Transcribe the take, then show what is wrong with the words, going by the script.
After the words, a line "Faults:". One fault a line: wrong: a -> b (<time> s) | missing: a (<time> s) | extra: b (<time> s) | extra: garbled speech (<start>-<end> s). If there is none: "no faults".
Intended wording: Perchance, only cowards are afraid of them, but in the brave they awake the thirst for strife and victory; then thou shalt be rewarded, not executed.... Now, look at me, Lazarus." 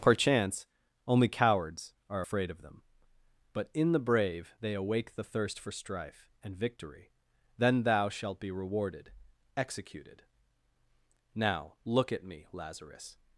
Perchance, only cowards are afraid of them, but in the brave they awake the thirst for strife and victory; then thou shalt be rewarded, executed.... Now, look at me, Lazarus."
Faults:
missing: not (9.1 s)